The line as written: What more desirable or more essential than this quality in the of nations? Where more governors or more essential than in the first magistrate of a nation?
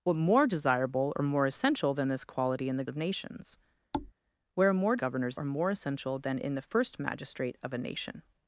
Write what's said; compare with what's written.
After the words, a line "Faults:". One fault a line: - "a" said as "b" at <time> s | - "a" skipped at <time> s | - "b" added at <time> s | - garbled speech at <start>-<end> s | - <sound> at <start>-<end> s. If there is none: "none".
What more desirable or more essential than this quality in the of nations? Where more governors or more essential than in the first magistrate of a nation?
Faults:
- thud at 3.9-4.1 s